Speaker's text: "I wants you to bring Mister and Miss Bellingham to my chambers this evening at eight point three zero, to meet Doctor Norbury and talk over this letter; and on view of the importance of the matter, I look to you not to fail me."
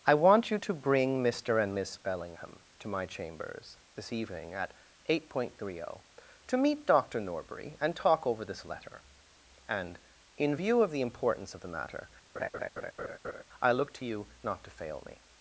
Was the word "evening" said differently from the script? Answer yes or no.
no